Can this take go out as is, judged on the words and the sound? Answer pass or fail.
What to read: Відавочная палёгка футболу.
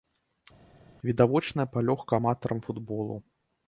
fail